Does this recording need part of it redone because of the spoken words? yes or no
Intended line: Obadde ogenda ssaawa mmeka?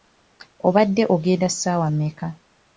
no